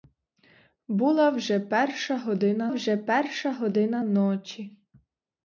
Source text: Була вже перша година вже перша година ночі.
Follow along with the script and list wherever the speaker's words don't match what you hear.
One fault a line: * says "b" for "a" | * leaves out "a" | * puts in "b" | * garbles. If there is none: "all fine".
all fine